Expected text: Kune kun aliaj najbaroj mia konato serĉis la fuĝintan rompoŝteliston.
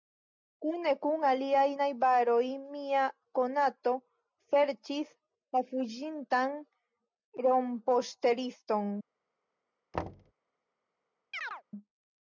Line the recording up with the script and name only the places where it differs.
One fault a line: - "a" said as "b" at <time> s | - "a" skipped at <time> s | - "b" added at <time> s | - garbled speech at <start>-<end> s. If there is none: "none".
none